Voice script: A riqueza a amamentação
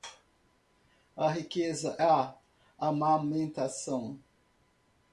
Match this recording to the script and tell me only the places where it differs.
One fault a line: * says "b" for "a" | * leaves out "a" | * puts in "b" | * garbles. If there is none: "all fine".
all fine